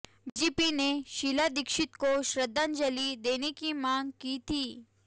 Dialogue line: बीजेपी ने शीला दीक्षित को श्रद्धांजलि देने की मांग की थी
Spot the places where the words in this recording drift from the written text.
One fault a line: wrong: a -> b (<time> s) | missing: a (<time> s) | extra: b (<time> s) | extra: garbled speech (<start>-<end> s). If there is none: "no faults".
no faults